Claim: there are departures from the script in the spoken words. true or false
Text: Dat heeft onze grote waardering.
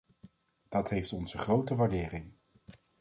false